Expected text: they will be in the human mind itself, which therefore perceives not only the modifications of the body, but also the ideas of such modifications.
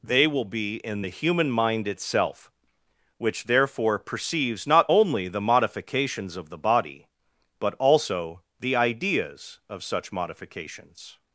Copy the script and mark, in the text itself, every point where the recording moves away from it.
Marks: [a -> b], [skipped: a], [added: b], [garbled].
they will be in the human mind itself, which therefore perceives not only the modifications of the body, but also the ideas of such modifications.